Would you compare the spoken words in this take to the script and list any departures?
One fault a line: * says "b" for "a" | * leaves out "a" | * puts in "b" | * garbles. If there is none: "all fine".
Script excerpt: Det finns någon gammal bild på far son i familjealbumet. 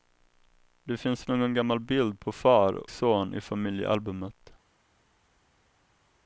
all fine